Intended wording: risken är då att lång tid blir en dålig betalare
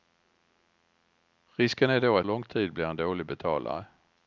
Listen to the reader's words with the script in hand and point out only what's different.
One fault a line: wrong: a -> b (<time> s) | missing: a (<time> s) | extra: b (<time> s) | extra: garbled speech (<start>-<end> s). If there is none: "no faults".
no faults